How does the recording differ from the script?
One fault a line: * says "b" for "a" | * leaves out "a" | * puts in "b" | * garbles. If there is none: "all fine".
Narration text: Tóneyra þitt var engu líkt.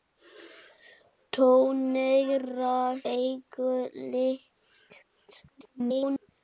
* leaves out "þitt var"
* garbles